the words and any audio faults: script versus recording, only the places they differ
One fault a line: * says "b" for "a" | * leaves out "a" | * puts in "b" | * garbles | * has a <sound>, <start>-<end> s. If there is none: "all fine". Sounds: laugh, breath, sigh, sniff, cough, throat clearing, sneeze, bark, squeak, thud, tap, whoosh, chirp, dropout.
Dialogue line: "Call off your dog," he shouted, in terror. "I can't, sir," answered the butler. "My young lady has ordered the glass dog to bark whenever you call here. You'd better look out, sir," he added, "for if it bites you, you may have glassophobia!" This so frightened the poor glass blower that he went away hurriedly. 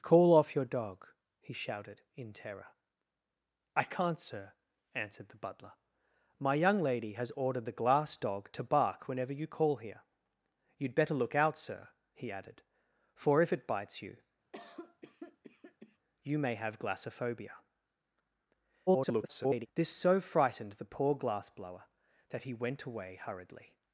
* has a cough, 14.5-16.0 s
* garbles